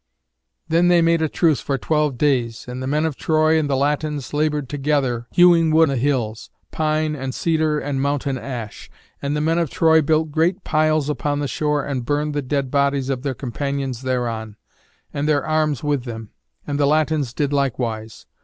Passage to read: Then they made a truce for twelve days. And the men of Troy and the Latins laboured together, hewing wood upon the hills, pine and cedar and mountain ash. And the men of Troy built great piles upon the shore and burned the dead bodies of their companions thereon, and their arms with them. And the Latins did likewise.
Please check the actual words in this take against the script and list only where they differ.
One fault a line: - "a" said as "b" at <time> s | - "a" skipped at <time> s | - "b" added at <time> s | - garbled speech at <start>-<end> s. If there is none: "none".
- "upon" skipped at 5.9 s